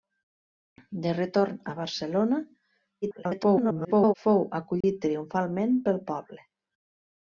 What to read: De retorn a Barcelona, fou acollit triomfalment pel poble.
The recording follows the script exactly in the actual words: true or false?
false